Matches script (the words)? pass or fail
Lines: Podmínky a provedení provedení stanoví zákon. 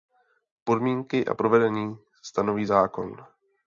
fail